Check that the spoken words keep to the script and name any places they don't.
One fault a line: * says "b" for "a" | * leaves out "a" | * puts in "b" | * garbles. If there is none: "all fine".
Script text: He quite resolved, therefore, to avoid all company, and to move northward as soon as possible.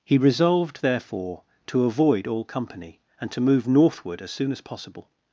* leaves out "quite"